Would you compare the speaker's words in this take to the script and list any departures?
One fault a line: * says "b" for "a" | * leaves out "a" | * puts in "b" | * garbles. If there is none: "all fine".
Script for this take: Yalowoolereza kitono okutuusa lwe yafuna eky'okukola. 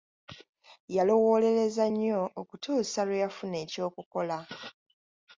* says "nnyo" for "kitono"